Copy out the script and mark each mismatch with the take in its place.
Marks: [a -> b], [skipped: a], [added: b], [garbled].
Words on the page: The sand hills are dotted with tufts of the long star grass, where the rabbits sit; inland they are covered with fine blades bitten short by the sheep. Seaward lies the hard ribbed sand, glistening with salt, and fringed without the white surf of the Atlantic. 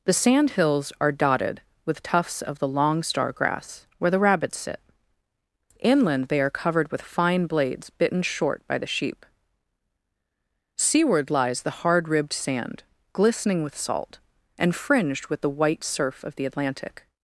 The sand hills are dotted with tufts of the long star grass, where the rabbits sit; inland they are covered with fine blades bitten short by the sheep. Seaward lies the hard ribbed sand, glistening with salt, and fringed [without -> with] the white surf of the Atlantic.